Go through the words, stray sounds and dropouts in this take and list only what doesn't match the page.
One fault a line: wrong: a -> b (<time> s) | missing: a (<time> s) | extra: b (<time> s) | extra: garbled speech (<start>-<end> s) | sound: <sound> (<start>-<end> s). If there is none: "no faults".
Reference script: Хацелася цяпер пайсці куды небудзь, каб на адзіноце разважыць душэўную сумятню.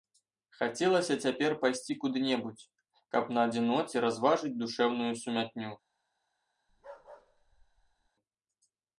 sound: bark (6.7-8.1 s)